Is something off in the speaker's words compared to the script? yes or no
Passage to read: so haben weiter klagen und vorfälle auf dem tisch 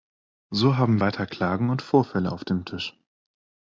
no